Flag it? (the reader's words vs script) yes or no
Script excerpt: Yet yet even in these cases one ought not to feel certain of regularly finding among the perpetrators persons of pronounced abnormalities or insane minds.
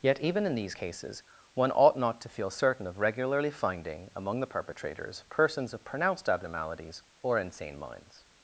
yes